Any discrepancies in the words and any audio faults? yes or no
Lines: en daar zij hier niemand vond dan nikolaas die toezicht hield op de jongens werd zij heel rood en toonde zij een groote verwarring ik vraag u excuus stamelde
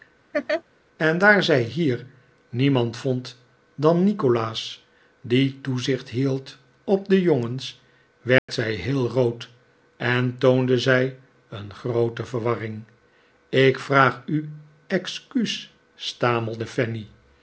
yes